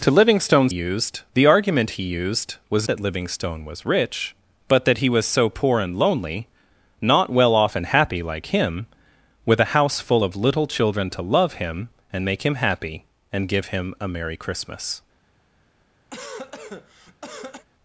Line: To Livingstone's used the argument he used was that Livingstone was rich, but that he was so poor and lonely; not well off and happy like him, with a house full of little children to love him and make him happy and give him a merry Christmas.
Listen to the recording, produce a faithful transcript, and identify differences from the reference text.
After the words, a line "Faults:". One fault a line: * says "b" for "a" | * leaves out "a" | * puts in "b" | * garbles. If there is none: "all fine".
To Livingstone's used the argument he used was that Livingstone was rich, but that he was so poor and lonely; not well off and happy like him, with a house full of little children to love him and make him happy and give him a merry Christmas.
Faults:
all fine